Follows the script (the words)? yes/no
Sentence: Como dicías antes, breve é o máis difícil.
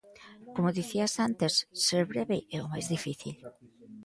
no